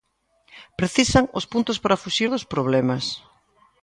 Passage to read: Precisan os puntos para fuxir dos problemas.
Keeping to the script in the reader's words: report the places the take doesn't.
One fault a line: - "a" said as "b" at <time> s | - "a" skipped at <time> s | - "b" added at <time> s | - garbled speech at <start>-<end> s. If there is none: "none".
none